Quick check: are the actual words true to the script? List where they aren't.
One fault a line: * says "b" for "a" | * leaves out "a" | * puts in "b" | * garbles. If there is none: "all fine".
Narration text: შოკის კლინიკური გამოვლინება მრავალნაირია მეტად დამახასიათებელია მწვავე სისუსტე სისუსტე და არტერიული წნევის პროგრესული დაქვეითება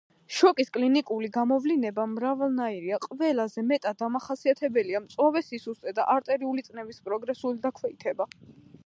* puts in "ყველაზე"
* leaves out "სისუსტე"